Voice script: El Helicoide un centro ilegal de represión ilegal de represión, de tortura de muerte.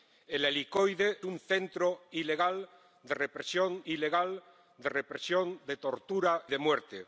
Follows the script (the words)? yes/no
yes